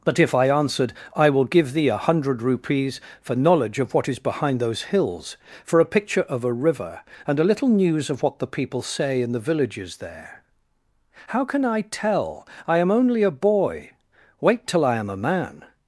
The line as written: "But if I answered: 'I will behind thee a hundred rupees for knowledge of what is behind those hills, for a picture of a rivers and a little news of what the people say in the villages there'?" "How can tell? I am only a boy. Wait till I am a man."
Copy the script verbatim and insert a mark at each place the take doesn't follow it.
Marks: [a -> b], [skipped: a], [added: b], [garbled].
"But if I answered: 'I will [behind -> give] thee a hundred rupees for knowledge of what is behind those hills, for a picture of a [rivers -> river] and a little news of what the people say in the villages there'?" "How can [added: I] tell? I am only a boy. Wait till I am a man."